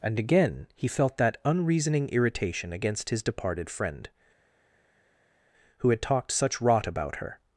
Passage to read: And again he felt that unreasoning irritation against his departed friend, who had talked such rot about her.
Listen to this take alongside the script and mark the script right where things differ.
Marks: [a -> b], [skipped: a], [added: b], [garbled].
And again he felt that unreasoning irritation against his departed friend, who had talked such rot about her.